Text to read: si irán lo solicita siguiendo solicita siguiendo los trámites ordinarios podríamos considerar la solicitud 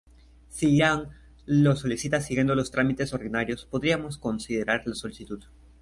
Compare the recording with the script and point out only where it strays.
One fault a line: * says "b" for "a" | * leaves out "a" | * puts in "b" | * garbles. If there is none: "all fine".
* leaves out "solicita siguiendo"